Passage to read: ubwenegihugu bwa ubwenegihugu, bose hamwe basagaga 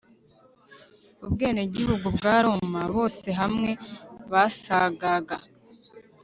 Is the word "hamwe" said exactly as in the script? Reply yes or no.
yes